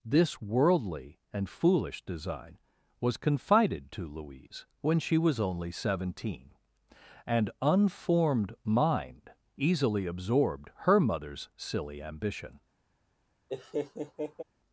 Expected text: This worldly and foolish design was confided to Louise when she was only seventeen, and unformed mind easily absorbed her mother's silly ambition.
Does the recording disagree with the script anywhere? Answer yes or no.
no